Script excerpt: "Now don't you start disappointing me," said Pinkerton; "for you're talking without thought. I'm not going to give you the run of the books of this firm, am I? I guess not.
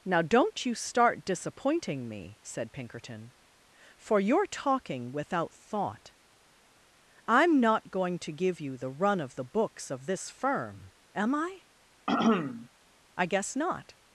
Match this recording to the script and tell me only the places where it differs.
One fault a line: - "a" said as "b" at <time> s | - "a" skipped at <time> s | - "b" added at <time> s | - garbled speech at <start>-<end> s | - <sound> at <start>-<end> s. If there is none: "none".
- throat clearing at 12.1-12.7 s